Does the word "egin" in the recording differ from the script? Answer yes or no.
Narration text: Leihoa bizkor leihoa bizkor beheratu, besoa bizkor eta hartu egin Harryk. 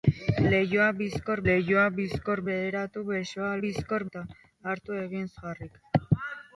no